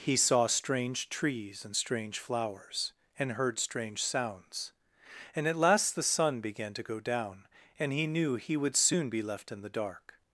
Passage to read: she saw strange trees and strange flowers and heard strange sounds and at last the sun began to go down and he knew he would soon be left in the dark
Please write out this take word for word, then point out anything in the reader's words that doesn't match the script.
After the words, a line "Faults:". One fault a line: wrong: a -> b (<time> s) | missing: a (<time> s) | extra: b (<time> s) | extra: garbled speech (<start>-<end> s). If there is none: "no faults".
he saw strange trees and strange flowers and heard strange sounds and at last the sun began to go down and he knew he would soon be left in the dark
Faults:
wrong: she -> he (0.0 s)